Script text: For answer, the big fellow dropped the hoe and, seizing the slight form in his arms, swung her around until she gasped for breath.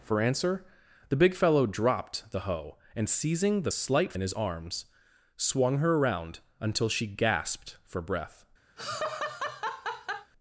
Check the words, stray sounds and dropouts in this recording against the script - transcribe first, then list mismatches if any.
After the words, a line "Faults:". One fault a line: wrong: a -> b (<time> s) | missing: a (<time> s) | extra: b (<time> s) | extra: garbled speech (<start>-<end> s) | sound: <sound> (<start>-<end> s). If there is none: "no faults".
For answer, the big fellow dropped the hoe and, seizing the slight in his arms, swung her around until she gasped for breath.
Faults:
missing: form (4.1 s)
sound: laugh (8.8-10.3 s)